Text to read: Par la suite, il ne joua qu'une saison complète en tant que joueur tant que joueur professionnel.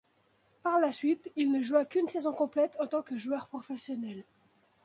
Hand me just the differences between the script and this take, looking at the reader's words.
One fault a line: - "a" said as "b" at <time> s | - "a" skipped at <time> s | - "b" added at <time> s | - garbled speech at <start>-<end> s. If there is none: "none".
- "tant que joueur" skipped at 3.5 s